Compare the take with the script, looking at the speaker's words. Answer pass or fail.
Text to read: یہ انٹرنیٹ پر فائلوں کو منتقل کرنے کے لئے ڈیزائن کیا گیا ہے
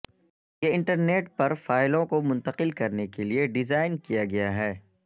pass